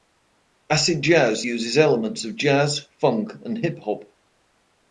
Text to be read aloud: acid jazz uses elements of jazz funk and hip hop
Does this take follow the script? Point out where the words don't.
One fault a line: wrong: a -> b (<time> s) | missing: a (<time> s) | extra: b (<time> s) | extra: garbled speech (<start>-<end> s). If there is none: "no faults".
no faults